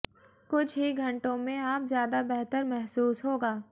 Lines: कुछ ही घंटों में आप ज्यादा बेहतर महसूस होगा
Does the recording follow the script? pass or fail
pass